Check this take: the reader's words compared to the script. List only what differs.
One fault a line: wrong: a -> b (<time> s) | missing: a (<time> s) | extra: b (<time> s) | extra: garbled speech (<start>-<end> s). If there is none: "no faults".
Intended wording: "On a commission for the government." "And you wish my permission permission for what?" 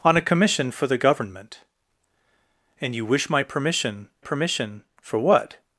no faults